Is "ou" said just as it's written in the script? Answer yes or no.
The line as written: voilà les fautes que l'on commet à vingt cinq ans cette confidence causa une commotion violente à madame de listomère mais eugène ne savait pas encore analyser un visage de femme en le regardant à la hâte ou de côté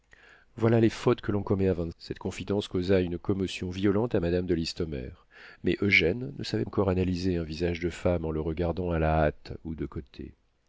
yes